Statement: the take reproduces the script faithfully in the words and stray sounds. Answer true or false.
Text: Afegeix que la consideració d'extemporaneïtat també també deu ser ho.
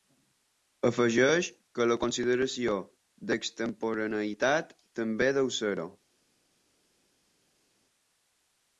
false